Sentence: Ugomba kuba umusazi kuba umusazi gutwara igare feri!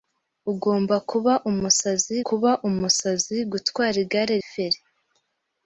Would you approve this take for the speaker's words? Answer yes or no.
yes